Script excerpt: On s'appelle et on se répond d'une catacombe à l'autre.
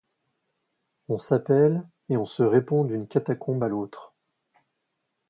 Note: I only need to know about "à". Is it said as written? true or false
true